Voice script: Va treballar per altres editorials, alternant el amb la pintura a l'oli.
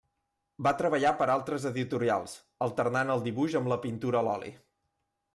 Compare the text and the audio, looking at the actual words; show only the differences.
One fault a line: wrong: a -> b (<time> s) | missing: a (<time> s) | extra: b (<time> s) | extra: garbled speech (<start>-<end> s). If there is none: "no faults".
extra: dibuix (3.3 s)